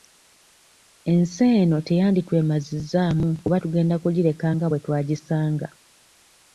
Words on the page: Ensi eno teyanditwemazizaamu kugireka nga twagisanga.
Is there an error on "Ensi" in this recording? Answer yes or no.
no